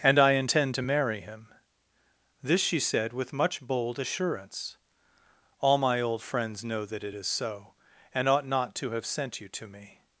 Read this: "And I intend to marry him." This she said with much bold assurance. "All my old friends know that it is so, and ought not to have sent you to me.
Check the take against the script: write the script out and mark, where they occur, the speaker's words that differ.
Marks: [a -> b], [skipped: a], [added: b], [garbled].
"And I intend to marry him." This she said with much bold assurance. "All my old friends know that it is so, and ought not to have sent you to me.